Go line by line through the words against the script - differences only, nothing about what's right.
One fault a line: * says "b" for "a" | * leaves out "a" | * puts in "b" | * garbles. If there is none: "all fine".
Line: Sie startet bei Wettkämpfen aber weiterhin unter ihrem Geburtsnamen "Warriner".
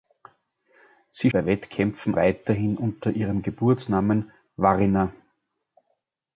* leaves out "startet"
* leaves out "aber"